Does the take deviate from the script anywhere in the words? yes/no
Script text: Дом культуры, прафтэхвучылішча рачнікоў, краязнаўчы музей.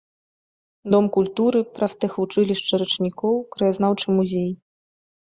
no